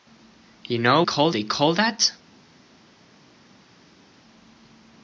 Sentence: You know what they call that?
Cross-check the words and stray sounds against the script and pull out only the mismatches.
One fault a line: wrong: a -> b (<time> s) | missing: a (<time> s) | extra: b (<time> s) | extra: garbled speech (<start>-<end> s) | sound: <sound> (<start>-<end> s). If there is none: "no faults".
wrong: what -> call (1.0 s)